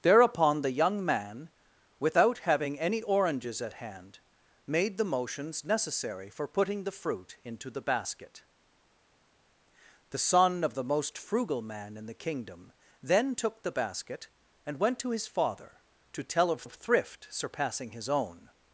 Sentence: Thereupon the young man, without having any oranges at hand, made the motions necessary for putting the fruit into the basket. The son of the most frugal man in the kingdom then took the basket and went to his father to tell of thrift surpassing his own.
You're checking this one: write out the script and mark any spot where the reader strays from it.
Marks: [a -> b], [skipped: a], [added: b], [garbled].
Thereupon the young man, without having any oranges at hand, made the motions necessary for putting the fruit into the basket. The son of the most frugal man in the kingdom then took the basket and went to his father to tell of [added: of] thrift surpassing his own.